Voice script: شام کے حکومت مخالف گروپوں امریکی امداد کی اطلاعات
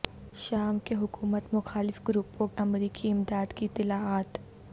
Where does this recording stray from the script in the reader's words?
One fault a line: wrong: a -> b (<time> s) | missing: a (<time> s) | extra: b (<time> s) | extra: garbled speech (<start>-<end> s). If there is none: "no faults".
no faults